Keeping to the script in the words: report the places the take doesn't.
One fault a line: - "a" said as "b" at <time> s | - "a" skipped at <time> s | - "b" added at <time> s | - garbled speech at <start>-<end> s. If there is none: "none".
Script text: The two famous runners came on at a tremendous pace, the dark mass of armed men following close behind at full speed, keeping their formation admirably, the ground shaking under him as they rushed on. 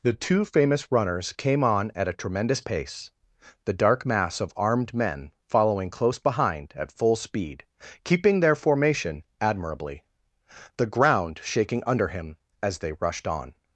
none